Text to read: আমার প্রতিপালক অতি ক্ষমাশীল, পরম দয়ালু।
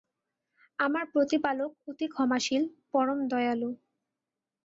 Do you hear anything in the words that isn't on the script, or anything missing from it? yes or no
no